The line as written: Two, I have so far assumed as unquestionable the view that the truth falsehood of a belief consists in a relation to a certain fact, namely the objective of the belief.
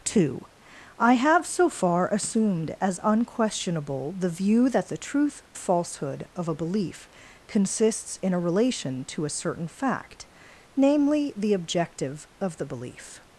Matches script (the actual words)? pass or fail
pass